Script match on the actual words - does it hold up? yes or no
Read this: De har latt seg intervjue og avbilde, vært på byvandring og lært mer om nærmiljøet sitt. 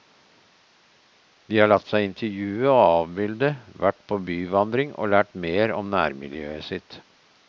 yes